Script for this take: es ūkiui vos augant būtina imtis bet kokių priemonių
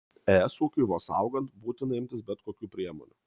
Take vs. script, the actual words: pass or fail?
pass